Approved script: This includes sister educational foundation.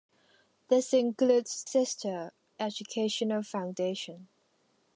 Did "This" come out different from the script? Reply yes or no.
no